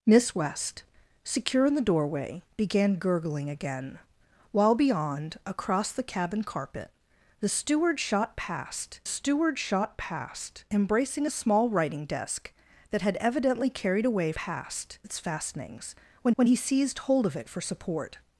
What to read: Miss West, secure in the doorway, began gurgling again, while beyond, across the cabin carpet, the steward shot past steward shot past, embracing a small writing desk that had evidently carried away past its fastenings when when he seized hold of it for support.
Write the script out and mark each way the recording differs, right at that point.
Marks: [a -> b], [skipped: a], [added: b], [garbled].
Miss West, secure in the doorway, began gurgling again, while beyond, across the cabin carpet, the steward shot past steward shot past, embracing a small writing desk that had evidently carried away past its fastenings when when he seized hold of it for support.